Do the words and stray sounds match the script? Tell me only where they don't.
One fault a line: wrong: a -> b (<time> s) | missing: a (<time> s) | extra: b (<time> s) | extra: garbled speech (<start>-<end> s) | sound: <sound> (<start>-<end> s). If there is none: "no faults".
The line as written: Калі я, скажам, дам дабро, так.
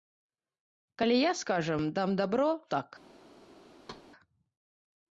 sound: thud (3.8-4.1 s)